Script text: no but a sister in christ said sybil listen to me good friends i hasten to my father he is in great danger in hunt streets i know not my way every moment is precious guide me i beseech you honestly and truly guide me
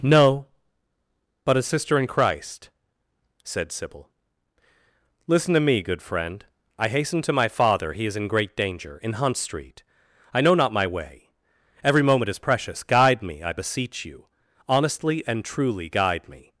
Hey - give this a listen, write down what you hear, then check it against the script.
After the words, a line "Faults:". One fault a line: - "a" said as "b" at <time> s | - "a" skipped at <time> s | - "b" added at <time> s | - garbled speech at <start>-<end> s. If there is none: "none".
no but a sister in christ said sybil listen to me good friend i hasten to my father he is in great danger in hunt street i know not my way every moment is precious guide me i beseech you honestly and truly guide me
Faults:
- "friends" said as "friend" at 6.0 s
- "streets" said as "street" at 9.4 s